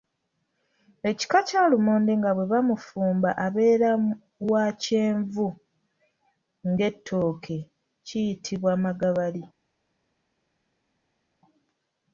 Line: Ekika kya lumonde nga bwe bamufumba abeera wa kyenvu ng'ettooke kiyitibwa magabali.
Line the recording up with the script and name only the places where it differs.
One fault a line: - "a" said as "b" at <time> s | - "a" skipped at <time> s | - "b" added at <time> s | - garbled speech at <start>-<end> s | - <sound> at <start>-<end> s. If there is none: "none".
none